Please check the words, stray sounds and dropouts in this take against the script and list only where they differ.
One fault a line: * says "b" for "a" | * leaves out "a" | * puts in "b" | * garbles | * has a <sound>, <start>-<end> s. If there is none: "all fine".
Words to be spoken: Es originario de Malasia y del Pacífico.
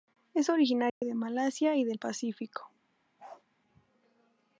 * has a dropout, 0.9-1.0 s
* has a bark, 3.2-3.4 s